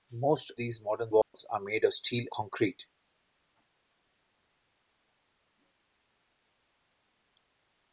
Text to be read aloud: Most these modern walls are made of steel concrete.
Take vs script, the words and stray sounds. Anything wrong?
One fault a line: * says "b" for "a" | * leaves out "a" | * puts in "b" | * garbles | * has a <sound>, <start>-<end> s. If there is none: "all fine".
* has a dropout, 1.2-1.3 s